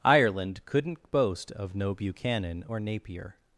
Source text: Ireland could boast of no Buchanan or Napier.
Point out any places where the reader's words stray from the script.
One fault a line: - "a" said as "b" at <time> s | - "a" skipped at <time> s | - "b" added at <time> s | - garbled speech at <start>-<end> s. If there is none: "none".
- "could" said as "couldn't" at 0.7 s